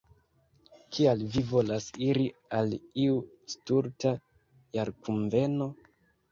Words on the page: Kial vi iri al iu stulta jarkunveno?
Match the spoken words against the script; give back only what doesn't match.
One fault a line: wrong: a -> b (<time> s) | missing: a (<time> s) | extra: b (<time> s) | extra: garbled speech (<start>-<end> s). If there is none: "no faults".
extra: volas (1.5 s)